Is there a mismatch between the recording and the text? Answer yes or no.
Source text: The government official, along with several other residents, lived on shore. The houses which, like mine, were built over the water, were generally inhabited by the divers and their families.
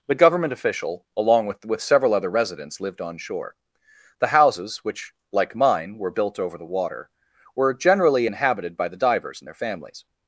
yes